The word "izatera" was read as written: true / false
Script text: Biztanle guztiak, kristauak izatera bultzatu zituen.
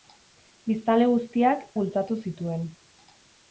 false